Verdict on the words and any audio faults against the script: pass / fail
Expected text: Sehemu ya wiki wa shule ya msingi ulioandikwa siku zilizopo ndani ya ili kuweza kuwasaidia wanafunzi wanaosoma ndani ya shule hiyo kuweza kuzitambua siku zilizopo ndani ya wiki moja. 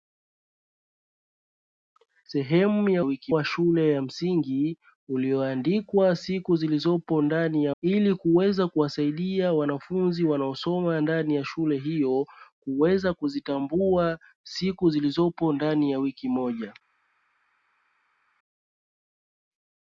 pass